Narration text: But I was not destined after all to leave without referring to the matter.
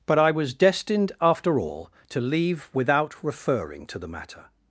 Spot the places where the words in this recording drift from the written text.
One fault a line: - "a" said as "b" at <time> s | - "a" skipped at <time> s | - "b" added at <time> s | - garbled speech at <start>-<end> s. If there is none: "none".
- "not" skipped at 0.5 s